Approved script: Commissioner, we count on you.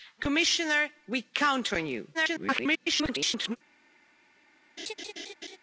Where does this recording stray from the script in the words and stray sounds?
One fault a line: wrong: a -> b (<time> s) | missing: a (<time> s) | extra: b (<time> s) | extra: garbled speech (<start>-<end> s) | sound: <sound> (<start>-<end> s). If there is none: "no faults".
extra: garbled speech (2.1-3.6 s)
sound: laugh (4.8-5.6 s)